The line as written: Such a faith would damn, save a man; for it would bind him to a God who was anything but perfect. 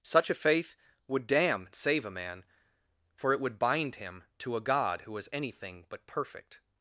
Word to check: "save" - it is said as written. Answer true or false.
true